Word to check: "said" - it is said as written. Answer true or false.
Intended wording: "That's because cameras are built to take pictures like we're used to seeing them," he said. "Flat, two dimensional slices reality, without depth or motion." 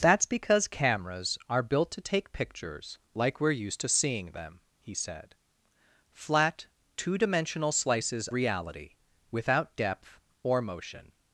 true